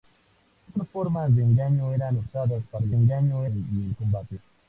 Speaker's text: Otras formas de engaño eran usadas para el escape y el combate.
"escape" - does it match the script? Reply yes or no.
no